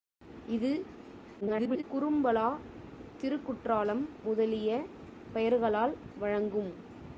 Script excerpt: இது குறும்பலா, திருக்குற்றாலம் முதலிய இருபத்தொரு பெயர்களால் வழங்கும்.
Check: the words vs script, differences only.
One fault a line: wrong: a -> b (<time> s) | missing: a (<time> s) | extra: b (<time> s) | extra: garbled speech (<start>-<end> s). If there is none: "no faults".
extra: garbled speech (1.4-1.8 s)
missing: இருபத்தொரு (4.7 s)